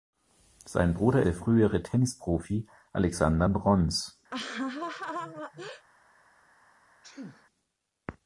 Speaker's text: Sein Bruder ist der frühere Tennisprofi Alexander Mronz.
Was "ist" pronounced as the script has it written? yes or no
no